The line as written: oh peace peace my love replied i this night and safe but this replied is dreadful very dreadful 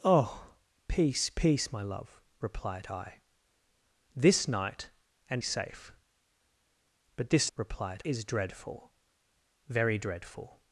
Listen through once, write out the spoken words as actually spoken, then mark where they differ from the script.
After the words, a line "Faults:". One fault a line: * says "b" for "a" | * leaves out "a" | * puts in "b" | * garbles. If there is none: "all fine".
oh peace peace my love replied i this night and safe but this replied is dreadful very dreadful
Faults:
all fine